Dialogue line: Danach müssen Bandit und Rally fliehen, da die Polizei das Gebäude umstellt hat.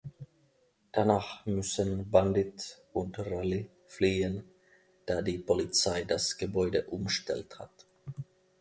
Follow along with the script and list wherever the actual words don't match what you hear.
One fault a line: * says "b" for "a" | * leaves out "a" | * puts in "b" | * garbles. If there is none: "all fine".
all fine